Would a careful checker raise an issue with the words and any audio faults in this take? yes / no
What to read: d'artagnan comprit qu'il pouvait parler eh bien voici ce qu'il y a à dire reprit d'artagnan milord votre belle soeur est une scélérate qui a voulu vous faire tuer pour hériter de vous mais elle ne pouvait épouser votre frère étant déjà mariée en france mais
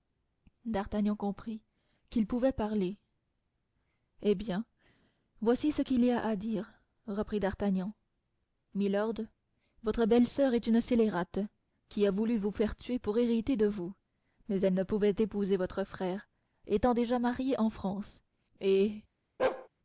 yes